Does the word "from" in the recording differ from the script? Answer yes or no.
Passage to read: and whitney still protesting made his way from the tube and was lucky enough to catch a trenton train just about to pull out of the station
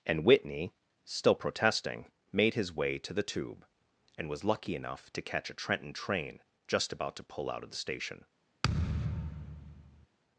yes